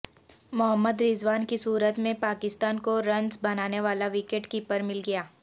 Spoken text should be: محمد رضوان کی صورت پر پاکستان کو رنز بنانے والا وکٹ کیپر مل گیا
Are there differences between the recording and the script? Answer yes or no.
yes